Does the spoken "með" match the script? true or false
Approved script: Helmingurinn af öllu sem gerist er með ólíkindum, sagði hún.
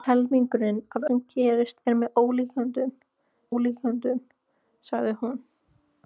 true